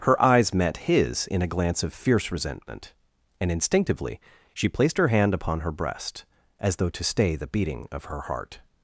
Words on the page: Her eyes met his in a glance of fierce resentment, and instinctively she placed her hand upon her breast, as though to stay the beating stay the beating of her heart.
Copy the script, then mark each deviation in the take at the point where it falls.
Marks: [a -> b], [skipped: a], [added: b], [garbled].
Her eyes met his in a glance of fierce resentment, and instinctively she placed her hand upon her breast, as though to stay the beating [skipped: stay the beating] of her heart.